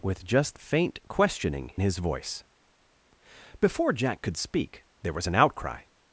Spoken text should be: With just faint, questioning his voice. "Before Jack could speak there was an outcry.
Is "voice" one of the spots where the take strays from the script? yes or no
no